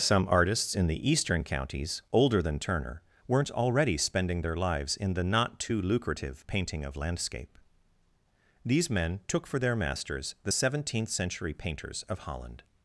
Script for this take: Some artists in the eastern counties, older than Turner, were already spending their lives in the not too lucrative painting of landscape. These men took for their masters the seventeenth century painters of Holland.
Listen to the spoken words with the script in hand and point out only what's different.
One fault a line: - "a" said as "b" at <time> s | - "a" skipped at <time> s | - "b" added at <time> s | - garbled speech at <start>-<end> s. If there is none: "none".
- "were" said as "weren't" at 3.3 s